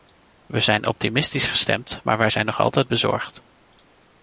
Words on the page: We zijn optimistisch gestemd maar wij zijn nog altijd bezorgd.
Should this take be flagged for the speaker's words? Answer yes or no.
no